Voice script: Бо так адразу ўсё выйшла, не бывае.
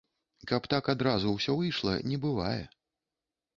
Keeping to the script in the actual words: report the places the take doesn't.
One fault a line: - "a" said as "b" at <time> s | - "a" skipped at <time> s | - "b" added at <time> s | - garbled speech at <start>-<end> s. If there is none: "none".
- "Бо" said as "Каб" at 0.5 s